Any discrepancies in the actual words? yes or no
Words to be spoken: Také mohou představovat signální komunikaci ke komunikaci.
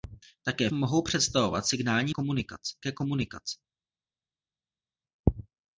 no